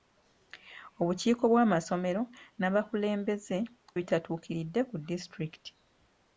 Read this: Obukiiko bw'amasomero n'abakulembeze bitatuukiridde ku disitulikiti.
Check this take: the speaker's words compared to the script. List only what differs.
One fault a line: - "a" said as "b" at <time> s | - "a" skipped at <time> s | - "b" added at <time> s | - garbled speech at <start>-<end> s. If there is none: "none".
none